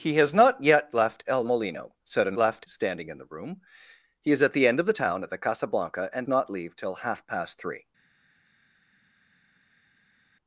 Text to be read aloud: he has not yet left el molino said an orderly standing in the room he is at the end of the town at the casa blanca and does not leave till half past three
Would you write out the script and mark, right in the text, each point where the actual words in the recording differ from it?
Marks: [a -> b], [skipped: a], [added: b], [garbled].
he has not yet left el molino said an [orderly -> left] standing in the room he is at the end of the town at the casa blanca and [skipped: does] not leave till half past three